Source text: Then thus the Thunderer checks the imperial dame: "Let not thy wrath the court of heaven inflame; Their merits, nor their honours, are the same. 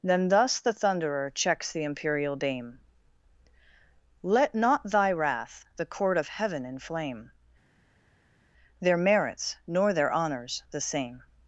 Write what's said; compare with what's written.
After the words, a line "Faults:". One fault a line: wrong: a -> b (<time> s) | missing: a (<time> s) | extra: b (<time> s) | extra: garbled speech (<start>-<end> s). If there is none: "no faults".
Then thus the Thunderer checks the imperial dame: "Let not thy wrath the court of heaven inflame; Their merits, nor their honours, the same.
Faults:
missing: are (10.6 s)